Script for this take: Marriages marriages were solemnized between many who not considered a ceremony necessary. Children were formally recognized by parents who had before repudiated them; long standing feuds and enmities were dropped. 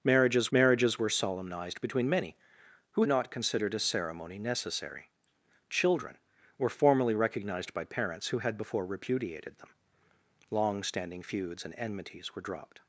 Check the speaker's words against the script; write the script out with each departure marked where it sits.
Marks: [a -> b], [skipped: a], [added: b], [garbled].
Marriages marriages were solemnized between many who not considered a ceremony necessary. Children were formally recognized by parents who had before repudiated them; long standing feuds and enmities were dropped.